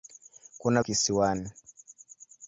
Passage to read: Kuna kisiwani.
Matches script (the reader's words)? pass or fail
pass